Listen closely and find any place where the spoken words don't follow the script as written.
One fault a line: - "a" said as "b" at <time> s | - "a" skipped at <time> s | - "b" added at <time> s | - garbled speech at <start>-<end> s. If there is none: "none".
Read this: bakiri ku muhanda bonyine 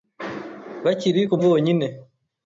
- "muhanda" skipped at 1.3 s